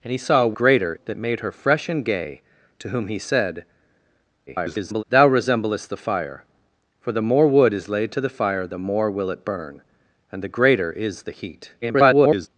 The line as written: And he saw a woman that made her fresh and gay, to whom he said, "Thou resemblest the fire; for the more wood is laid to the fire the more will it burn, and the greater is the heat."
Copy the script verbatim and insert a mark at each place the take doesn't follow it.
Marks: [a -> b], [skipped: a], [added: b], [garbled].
And he saw a [woman -> greater] that made her fresh and gay, to whom he said, [garbled] "Thou resemblest the fire; for the more wood is laid to the fire the more will it burn, and the greater is the heat." [garbled]